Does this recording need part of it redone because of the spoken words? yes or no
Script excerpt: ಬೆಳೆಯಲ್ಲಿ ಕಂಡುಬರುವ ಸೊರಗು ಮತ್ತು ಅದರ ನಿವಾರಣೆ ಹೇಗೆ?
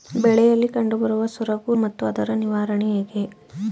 no